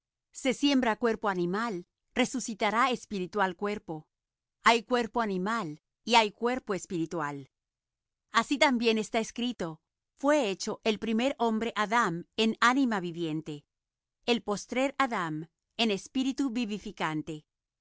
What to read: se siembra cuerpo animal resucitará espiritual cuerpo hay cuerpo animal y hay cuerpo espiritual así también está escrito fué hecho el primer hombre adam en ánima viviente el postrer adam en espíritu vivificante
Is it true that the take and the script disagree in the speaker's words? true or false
false